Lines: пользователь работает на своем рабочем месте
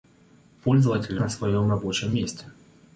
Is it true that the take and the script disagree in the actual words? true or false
true